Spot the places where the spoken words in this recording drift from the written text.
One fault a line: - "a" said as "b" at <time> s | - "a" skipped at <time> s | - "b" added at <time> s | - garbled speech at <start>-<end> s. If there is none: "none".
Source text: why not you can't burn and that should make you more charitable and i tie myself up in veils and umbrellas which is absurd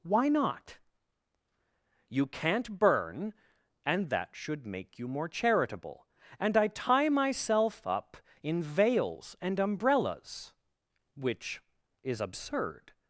none